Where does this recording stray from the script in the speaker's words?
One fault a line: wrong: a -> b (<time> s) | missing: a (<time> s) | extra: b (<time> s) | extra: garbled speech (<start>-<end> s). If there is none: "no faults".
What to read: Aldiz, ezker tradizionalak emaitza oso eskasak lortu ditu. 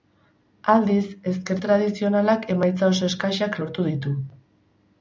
no faults